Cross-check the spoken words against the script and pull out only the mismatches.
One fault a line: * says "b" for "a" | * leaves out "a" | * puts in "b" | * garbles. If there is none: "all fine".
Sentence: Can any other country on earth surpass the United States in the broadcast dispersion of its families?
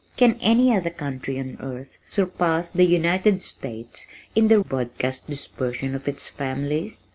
all fine